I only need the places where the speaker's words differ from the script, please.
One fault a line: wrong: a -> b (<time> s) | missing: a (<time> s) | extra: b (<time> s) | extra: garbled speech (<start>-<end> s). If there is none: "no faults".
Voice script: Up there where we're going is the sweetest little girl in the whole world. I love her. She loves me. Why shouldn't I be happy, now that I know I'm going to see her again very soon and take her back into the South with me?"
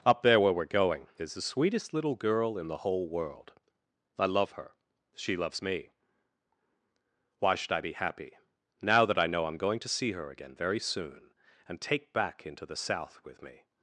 wrong: shouldn't -> should (7.5 s)
missing: her (12.1 s)